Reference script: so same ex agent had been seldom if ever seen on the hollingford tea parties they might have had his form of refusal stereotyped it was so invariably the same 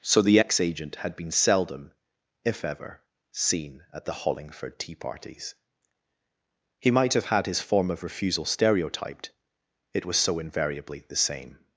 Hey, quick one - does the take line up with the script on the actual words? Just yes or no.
no